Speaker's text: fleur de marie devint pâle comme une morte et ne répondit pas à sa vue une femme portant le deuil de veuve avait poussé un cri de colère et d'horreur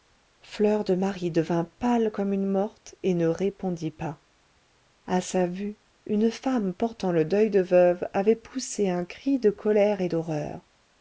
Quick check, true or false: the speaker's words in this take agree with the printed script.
true